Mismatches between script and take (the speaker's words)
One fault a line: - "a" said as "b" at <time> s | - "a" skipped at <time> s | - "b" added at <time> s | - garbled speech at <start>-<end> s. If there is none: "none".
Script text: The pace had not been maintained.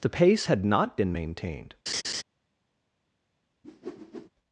none